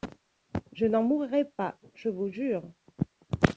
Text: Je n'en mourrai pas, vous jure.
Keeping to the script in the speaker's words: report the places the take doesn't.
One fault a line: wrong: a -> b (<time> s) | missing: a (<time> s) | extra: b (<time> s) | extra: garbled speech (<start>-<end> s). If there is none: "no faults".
extra: je (1.9 s)